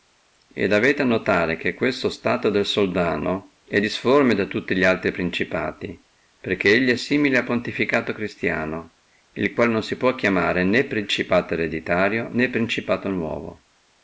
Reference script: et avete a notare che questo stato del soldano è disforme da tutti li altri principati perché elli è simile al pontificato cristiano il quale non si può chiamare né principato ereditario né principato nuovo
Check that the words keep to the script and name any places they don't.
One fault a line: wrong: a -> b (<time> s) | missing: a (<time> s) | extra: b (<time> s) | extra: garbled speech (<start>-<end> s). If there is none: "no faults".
no faults